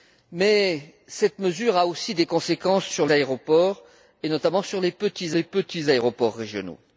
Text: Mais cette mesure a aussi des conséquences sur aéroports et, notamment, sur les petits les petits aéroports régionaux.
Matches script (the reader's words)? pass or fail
pass